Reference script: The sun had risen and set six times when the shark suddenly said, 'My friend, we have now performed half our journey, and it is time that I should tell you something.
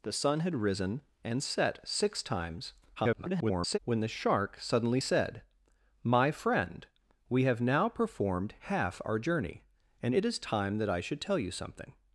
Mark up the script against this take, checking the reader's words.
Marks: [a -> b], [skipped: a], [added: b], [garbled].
The sun had risen and set six times [garbled] when the shark suddenly said, 'My friend, we have now performed half our journey, and it is time that I should tell you something.